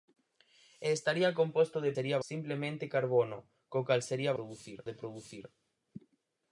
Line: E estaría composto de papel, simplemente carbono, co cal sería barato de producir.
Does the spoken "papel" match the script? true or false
false